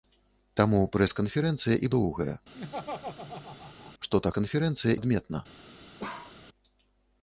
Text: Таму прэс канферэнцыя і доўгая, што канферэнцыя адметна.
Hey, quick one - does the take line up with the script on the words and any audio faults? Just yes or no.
no